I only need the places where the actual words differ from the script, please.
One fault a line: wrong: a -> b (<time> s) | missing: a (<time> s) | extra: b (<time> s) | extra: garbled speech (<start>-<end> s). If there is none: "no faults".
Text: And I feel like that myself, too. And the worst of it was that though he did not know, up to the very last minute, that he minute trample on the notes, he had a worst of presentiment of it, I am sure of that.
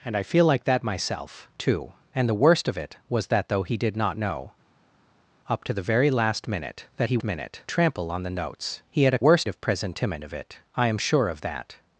no faults